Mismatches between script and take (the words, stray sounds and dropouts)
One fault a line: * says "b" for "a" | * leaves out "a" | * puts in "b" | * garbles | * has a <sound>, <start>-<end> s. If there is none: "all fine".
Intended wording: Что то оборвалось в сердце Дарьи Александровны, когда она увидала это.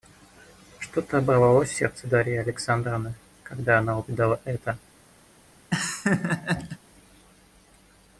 * has a laugh, 5.7-6.8 s